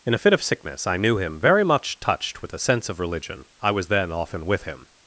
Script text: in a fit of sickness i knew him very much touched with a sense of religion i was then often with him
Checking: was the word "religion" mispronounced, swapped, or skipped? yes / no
no